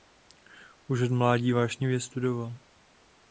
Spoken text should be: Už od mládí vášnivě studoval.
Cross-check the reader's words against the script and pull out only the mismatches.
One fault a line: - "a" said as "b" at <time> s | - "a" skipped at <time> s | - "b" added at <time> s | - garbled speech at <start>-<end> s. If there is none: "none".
none